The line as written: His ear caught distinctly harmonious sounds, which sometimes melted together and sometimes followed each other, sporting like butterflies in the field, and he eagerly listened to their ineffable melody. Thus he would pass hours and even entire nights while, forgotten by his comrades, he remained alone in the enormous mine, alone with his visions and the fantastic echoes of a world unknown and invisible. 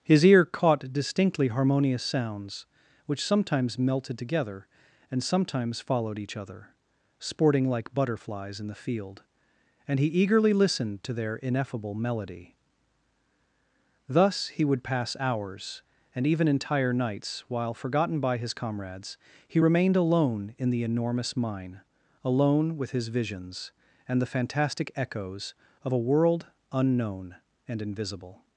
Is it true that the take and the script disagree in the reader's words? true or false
false